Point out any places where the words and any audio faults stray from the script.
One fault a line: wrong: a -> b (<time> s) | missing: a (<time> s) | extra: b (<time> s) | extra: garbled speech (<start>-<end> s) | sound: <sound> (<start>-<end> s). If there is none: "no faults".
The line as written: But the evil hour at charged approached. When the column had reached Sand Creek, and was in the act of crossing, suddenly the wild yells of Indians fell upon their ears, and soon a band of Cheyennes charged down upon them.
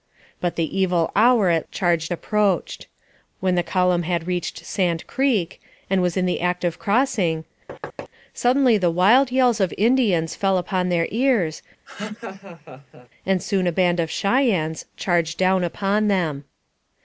sound: thud (7.7-8.1 s)
sound: laugh (11.9-13.1 s)